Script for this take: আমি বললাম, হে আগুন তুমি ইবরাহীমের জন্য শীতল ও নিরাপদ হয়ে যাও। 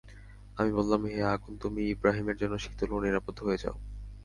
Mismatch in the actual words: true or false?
false